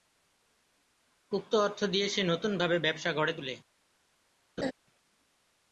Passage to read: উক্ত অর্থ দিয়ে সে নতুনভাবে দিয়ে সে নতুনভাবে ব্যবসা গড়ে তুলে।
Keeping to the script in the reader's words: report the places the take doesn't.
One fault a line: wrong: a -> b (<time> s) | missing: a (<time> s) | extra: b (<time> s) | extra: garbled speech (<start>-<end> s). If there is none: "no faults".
missing: দিয়ে সে নতুনভাবে (2.8 s)